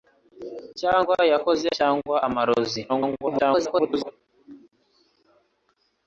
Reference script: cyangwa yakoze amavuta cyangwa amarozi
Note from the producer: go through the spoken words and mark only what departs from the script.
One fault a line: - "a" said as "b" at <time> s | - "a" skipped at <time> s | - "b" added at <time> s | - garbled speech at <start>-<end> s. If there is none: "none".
- "amavuta" skipped at 1.7 s
- garbled speech at 2.9-4.1 s